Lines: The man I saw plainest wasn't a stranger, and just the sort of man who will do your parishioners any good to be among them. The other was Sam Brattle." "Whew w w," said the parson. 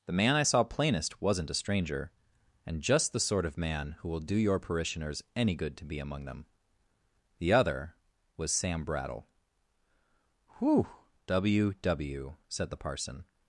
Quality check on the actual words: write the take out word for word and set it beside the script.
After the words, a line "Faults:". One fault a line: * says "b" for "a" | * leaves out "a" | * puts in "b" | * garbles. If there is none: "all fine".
The man I saw plainest wasn't a stranger, and just the sort of man who will do your parishioners any good to be among them. The other was Sam Brattle." "Whew w w," said the parson.
Faults:
all fine